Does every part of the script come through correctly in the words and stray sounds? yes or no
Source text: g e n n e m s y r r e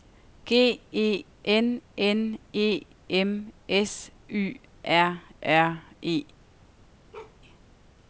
no